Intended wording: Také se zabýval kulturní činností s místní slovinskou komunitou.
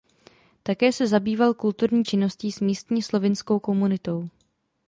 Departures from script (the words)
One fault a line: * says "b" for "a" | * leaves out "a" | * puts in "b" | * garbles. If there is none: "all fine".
all fine